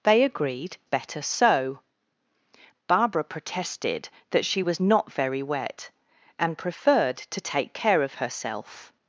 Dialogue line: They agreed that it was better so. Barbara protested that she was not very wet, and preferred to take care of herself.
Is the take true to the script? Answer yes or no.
no